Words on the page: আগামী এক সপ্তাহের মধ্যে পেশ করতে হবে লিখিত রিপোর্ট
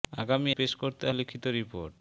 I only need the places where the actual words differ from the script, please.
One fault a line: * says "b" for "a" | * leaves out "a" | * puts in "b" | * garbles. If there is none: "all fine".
* leaves out "এক সপ্তাহের মধ্যে"
* leaves out "হবে"